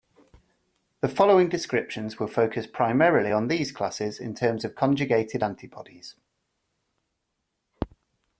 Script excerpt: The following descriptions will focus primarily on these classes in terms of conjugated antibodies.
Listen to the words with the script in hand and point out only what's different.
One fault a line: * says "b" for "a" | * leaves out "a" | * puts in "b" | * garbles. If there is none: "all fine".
all fine